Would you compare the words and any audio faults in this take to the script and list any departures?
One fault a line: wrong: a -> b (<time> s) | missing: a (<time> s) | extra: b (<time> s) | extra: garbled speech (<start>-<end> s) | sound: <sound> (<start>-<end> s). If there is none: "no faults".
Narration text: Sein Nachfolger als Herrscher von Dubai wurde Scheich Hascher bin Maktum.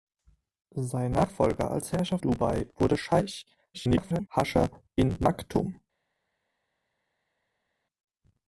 missing: von (2.2 s)
extra: garbled speech (3.7-4.3 s)